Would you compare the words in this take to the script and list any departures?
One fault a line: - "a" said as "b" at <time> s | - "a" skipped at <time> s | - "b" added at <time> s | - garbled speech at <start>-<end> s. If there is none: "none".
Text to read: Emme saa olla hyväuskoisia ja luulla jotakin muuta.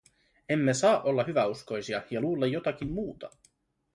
none